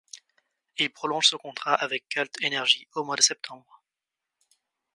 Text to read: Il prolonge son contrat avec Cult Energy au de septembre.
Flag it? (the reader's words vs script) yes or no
yes